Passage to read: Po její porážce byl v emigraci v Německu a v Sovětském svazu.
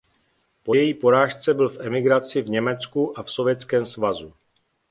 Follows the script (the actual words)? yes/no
yes